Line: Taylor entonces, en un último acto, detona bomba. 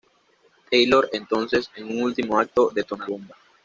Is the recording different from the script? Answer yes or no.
no